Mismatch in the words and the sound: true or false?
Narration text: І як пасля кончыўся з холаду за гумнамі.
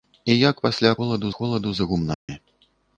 true